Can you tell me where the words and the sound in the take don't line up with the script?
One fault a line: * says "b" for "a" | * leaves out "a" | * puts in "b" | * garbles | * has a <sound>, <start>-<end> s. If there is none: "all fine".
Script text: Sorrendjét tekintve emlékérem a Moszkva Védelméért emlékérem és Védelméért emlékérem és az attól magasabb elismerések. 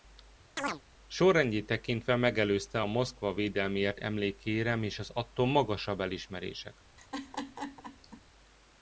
* has a chirp, 0.6-0.8 s
* says "megelőzte" for "emlékérem"
* leaves out "Védelméért emlékérem és"
* has a laugh, 7.0-8.2 s